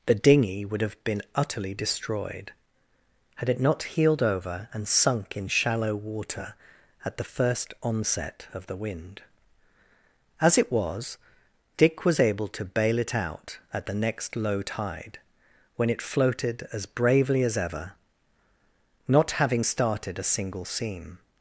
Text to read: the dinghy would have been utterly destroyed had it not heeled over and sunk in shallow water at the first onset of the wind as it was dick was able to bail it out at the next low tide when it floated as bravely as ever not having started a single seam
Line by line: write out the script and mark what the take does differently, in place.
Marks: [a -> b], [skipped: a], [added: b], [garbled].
the dinghy would have been utterly destroyed had it not heeled over and sunk in shallow water at the first onset of the wind as it was dick was able to bail it out at the next low tide when it floated as bravely as ever not having started a single seam